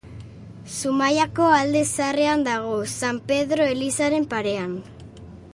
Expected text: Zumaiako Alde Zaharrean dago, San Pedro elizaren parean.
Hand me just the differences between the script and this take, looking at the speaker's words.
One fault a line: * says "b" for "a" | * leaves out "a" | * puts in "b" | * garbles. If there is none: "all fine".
all fine